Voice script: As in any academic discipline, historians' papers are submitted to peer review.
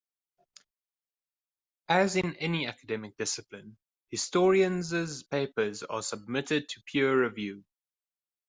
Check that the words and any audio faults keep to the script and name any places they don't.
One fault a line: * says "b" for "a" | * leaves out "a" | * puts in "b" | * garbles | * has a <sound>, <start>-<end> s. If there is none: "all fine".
all fine